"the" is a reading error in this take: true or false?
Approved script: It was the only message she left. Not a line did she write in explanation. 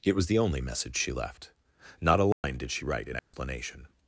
false